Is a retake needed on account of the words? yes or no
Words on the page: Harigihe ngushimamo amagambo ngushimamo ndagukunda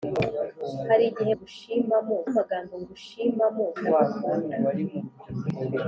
no